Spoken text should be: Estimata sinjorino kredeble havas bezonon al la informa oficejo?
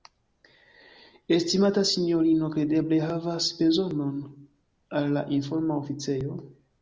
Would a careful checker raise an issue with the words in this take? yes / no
no